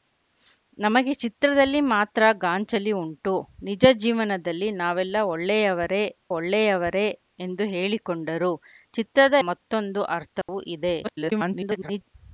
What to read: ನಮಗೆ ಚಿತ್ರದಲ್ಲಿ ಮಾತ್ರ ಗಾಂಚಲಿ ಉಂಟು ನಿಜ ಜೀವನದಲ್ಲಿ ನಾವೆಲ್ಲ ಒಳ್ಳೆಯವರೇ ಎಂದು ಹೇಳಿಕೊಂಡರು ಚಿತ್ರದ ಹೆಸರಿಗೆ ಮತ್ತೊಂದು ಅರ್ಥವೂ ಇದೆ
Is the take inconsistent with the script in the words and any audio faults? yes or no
yes